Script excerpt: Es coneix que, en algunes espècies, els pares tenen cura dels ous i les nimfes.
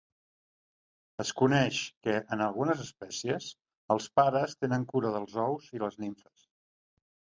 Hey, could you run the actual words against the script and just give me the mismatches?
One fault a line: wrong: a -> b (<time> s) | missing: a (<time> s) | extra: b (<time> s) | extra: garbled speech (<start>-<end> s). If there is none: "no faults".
no faults